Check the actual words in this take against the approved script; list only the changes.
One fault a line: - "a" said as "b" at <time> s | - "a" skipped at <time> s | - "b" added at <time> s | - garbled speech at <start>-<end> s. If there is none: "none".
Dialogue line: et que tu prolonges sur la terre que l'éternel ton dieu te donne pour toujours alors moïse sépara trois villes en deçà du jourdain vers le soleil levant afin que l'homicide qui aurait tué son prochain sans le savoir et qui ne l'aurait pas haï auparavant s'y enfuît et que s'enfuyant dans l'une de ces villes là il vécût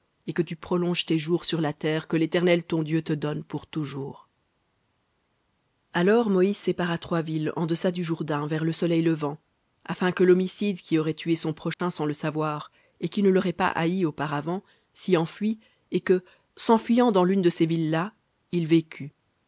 - "tes jours" added at 1.1 s